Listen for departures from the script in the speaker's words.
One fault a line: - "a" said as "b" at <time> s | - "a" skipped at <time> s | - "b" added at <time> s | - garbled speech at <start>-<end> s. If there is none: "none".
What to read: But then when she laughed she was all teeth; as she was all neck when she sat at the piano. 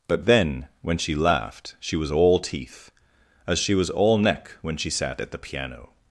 none